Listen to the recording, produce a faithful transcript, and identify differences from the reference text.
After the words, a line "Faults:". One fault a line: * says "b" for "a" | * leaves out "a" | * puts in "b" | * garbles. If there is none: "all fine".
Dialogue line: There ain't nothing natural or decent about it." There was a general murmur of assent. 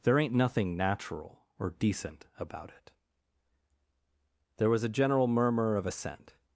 There ain't nothing natural or decent about it." There was a general murmur of assent.
Faults:
all fine